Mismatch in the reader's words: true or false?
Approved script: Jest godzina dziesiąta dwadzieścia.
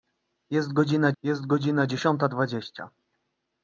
true